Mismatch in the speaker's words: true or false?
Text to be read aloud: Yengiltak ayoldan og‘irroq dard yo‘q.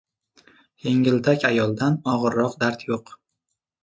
false